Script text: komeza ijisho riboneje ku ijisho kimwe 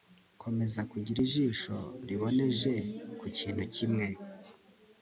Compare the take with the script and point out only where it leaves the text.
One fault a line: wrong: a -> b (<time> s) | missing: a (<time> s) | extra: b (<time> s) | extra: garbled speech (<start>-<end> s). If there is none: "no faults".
extra: kugira (0.9 s)
wrong: ijisho -> kintu (3.4 s)